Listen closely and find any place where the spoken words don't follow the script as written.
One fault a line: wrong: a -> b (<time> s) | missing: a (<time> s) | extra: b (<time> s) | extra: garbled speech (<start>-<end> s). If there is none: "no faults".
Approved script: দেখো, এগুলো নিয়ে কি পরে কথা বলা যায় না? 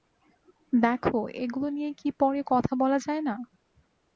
no faults